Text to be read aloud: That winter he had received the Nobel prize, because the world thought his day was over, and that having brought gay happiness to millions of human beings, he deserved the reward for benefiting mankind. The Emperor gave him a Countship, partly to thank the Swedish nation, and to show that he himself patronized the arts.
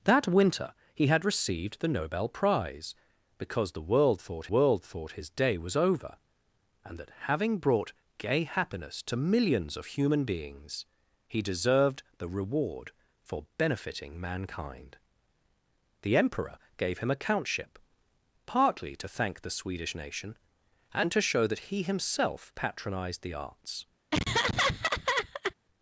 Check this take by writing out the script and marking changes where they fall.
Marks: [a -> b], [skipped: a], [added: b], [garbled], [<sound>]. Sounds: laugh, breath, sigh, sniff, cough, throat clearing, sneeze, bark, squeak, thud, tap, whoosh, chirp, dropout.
That winter he had received the Nobel prize, because the world thought [added: world thought] his day was over, and that having brought gay happiness to millions of human beings, he deserved the reward for benefiting mankind. The Emperor gave him a Countship, partly to thank the Swedish nation, and to show that he himself patronized the arts. [laugh]